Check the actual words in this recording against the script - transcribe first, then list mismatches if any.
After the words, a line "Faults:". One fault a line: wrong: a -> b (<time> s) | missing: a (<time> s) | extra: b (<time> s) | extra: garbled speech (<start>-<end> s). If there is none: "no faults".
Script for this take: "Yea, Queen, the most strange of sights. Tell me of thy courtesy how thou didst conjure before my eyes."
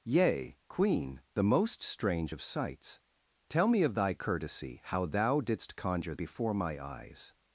"Yea, Queen, the most strange of sights. Tell me of thy courtesy how thou didst conjure before my eyes."
Faults:
no faults